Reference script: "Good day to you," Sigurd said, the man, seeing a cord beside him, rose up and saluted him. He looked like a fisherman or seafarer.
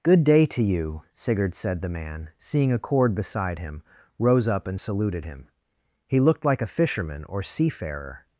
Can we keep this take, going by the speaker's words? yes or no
yes